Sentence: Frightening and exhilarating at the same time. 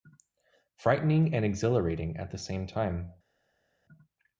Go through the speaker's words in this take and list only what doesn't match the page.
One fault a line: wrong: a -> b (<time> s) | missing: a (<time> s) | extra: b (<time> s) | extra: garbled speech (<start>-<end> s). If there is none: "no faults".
no faults